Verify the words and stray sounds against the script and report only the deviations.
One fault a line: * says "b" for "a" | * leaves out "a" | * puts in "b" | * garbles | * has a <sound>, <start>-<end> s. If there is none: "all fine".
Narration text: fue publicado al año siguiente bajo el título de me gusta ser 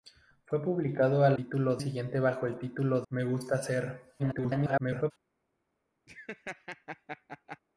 * says "título" for "año"
* leaves out "de"
* garbles
* has a laugh, 6.1-7.6 s